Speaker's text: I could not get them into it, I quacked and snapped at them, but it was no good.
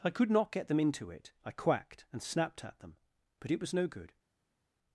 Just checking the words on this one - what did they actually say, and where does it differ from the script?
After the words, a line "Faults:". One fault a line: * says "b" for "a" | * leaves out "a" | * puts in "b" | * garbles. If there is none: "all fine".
I could not get them into it, I quacked and snapped at them, but it was no good.
Faults:
all fine